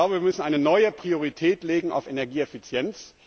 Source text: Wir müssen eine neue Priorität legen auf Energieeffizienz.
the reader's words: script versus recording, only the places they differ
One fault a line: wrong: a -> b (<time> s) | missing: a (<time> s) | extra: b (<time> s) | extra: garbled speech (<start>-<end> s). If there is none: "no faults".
no faults